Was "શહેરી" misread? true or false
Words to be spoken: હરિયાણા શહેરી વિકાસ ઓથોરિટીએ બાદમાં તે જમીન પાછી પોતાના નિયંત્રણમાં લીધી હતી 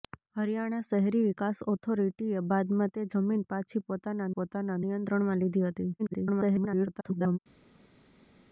false